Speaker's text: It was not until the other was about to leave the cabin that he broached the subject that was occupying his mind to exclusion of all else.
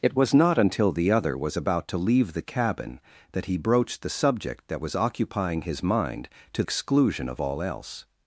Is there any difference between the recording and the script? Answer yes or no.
no